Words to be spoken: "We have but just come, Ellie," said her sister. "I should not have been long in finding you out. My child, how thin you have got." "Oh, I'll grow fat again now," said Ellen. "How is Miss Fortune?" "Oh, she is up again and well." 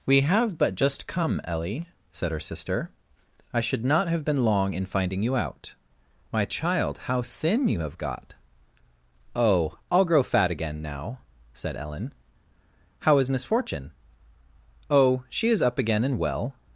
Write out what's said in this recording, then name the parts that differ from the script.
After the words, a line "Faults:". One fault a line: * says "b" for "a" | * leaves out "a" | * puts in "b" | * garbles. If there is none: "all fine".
"We have but just come, Ellie," said her sister. "I should not have been long in finding you out. My child, how thin you have got." "Oh, I'll grow fat again now," said Ellen. "How is Miss Fortune?" "Oh, she is up again and well."
Faults:
all fine